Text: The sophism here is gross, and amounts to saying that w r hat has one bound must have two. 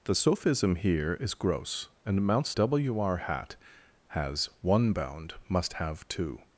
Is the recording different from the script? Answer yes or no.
yes